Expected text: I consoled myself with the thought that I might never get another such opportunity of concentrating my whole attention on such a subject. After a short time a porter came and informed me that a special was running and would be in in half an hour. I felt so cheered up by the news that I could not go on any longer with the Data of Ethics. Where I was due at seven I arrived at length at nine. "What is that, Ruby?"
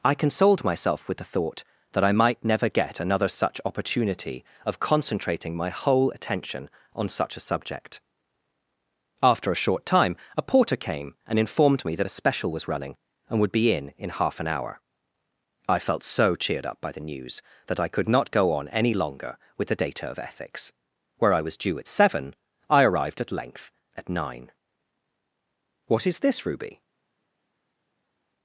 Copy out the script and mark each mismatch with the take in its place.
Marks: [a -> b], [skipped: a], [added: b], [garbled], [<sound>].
I consoled myself with the thought that I might never get another such opportunity of concentrating my whole attention on such a subject. After a short time a porter came and informed me that a special was running and would be in in half an hour. I felt so cheered up by the news that I could not go on any longer with the Data of Ethics. Where I was due at seven I arrived at length at nine. "What is [that, -> this] Ruby?"